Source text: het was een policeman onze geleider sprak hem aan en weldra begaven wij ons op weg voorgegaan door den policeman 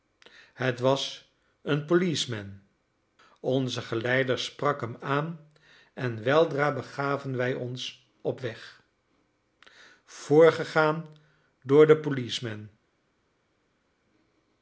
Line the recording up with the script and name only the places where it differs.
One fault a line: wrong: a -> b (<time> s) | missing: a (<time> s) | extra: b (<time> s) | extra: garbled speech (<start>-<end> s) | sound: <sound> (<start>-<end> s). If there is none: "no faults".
no faults